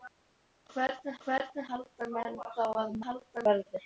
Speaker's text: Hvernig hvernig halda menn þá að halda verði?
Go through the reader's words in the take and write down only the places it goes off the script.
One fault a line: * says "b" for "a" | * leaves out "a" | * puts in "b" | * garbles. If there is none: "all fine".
all fine